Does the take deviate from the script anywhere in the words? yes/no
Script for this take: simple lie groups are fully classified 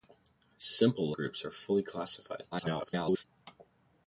yes